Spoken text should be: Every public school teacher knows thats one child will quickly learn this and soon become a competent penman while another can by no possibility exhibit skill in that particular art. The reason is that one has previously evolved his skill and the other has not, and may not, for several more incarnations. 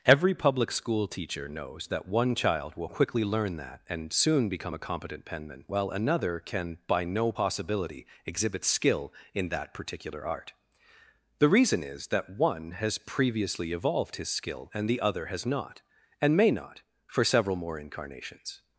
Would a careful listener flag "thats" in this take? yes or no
yes